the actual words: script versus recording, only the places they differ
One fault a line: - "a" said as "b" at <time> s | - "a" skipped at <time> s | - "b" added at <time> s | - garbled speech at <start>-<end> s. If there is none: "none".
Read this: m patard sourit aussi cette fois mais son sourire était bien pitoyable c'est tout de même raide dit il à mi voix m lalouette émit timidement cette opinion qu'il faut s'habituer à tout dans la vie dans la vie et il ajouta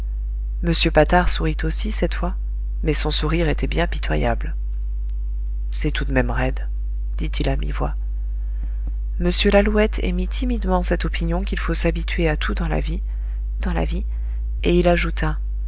none